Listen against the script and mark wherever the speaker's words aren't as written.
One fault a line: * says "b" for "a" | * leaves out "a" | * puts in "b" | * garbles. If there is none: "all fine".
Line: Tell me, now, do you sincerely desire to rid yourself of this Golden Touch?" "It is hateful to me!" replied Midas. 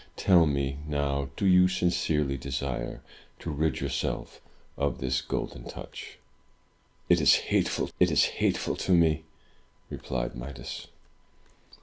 * puts in "it is hateful"